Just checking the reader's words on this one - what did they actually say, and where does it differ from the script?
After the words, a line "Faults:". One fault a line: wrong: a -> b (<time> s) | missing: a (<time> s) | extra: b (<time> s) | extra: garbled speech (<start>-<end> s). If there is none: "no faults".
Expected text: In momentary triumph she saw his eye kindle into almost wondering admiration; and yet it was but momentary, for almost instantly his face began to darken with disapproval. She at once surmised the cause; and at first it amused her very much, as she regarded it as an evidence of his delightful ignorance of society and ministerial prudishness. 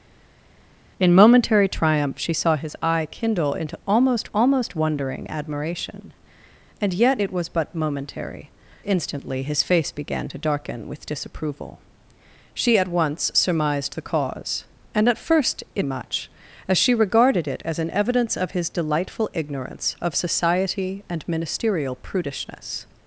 In momentary triumph she saw his eye kindle into almost almost wondering admiration; and yet it was but momentary, instantly his face began to darken with disapproval. She at once surmised the cause; and at first it much, as she regarded it as an evidence of his delightful ignorance of society and ministerial prudishness.
Faults:
extra: almost (4.3 s)
missing: for almost (8.5 s)
missing: amused her very (15.8 s)